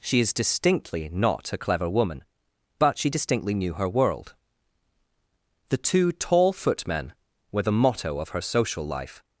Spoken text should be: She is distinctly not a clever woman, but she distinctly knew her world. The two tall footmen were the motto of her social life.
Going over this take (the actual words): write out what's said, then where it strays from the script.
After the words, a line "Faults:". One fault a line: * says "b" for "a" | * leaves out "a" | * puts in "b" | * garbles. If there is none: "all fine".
She is distinctly not a clever woman, but she distinctly knew her world. The two tall footmen were the motto of her social life.
Faults:
all fine